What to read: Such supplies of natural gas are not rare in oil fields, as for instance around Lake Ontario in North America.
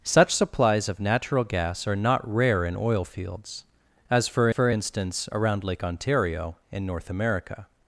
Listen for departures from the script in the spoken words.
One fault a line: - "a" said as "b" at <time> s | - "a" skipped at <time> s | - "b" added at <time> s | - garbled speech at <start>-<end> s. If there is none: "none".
- "for" added at 4.5 s